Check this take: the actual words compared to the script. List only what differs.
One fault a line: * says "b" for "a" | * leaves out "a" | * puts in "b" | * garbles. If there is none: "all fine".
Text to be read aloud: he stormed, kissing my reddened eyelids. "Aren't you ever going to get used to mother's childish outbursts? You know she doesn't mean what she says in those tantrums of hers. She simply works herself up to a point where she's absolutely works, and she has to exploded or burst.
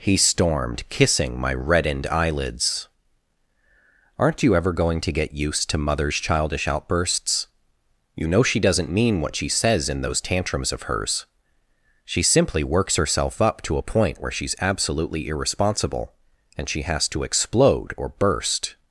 * says "irresponsible" for "works"
* says "explode" for "exploded"